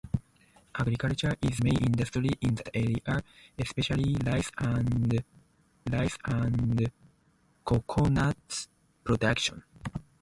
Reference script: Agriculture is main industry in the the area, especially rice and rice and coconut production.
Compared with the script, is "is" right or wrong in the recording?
right